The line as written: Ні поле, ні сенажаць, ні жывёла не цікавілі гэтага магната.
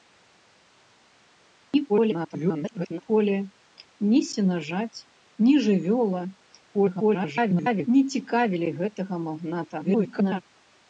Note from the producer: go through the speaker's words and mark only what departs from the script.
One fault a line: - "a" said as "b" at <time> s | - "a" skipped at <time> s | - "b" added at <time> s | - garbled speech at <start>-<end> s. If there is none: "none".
- garbled speech at 1.9-3.0 s
- garbled speech at 6.7-7.9 s
- garbled speech at 9.8-10.4 s